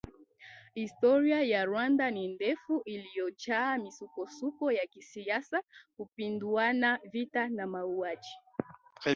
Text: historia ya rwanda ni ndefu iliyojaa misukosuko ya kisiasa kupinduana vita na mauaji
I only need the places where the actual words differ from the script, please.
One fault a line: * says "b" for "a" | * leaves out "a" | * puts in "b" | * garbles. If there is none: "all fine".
all fine